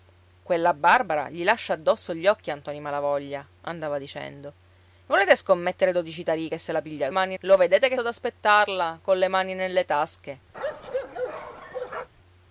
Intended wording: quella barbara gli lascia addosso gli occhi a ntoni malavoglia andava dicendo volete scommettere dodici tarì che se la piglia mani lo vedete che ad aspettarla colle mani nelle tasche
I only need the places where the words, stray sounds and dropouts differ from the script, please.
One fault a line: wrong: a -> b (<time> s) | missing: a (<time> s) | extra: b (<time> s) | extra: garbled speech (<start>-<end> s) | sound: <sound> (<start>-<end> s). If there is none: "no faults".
sound: bark (10.5-12.1 s)